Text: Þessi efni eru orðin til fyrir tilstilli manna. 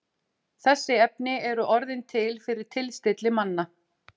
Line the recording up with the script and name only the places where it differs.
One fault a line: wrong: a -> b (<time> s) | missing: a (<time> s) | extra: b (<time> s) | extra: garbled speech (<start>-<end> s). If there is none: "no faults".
no faults